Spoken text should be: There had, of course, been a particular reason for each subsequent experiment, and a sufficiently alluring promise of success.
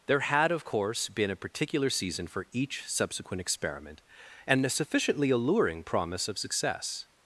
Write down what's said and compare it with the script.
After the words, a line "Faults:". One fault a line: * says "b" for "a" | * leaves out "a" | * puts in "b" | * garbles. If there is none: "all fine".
There had, of course, been a particular season for each subsequent experiment, and a sufficiently alluring promise of success.
Faults:
* says "season" for "reason"